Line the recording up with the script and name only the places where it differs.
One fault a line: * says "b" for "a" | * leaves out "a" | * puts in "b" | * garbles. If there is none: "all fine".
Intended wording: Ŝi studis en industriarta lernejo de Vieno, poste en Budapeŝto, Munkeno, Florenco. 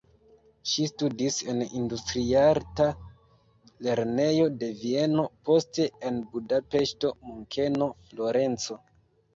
all fine